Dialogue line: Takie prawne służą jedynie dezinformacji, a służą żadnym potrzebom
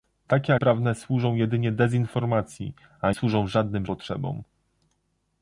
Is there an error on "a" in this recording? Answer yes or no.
no